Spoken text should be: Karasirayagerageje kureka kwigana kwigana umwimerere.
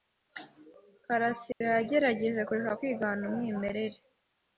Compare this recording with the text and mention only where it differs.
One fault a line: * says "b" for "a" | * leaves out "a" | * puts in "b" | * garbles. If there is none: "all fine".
* leaves out "kwigana"